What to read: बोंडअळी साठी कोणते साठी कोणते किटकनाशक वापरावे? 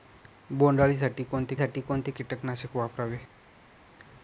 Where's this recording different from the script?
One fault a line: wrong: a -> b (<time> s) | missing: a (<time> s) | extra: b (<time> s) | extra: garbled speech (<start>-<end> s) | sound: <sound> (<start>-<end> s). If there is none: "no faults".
no faults